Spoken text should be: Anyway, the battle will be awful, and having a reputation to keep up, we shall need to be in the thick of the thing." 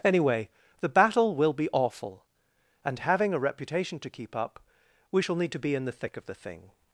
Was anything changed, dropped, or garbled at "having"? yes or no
no